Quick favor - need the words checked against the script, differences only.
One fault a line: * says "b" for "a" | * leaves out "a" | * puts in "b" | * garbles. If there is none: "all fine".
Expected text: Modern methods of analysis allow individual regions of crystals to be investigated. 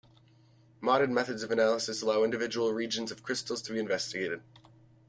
all fine